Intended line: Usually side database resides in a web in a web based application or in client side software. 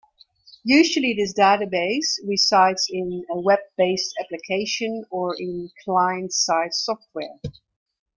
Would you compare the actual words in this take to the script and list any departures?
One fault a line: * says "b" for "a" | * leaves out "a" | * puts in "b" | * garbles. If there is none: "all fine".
* says "this" for "side"
* leaves out "in a web"